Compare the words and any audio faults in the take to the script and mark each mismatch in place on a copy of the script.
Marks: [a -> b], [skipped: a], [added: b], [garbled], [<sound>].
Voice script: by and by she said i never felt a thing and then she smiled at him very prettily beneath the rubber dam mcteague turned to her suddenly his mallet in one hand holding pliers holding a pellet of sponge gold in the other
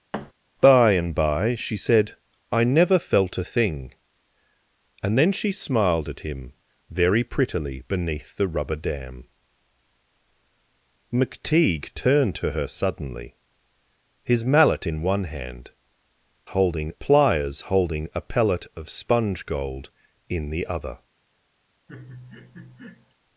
[thud] by and by she said i never felt a thing and then she smiled at him very prettily beneath the rubber dam mcteague turned to her suddenly his mallet in one hand holding pliers holding a pellet of sponge gold in the other [laugh]